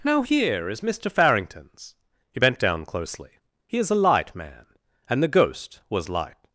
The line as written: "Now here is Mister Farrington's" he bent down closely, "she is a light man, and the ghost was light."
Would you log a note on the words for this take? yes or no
yes